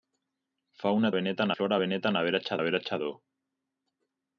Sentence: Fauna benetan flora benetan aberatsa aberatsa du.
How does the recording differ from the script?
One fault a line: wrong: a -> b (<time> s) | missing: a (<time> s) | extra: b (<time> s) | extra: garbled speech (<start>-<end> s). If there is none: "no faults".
no faults